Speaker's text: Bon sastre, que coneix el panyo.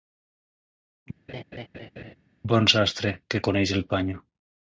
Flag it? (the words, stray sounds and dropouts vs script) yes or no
yes